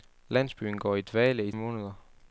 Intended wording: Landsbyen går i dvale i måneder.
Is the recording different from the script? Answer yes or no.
no